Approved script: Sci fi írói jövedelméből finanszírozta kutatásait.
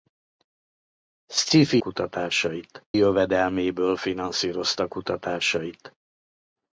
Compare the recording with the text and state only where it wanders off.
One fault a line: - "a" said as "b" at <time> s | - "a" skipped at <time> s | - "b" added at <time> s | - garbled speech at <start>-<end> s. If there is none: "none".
- "írói" said as "kutatásait" at 1.8 s